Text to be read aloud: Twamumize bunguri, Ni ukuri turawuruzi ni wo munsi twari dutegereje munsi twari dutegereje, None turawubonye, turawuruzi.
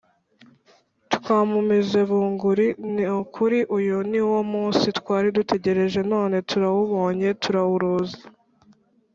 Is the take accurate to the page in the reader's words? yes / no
no